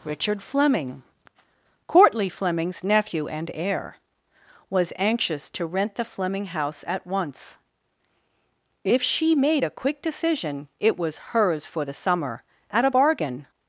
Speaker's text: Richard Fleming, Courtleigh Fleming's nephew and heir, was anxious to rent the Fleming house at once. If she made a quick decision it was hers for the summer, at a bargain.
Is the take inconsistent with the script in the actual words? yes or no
no